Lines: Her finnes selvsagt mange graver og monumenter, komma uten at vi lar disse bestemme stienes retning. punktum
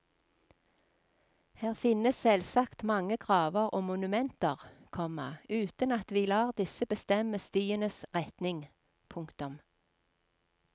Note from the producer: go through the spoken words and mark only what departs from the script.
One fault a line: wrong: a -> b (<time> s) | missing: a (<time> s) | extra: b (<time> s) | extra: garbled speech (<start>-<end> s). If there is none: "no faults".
no faults